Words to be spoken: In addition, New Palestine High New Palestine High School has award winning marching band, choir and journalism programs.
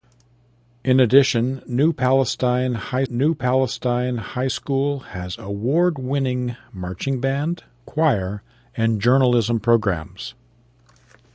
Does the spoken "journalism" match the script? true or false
true